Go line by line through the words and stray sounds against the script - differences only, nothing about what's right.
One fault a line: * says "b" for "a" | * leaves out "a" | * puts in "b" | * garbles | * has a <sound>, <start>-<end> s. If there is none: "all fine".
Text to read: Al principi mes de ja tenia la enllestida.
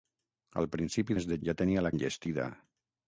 all fine